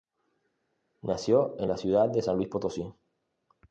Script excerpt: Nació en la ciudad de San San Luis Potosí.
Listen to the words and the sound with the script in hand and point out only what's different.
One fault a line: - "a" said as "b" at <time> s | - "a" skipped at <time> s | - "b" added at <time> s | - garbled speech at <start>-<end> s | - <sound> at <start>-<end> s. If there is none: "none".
- "San" skipped at 2.4 s